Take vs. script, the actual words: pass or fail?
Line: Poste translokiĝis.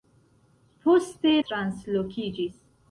pass